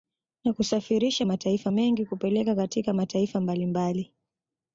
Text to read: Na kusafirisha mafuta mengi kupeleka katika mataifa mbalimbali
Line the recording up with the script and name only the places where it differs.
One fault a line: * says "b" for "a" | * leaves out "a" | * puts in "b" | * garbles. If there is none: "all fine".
* says "mataifa" for "mafuta"